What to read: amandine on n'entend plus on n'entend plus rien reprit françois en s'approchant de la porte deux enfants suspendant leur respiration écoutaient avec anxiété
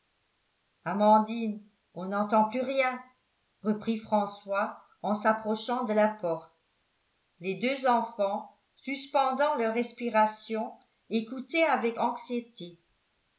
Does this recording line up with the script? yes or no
no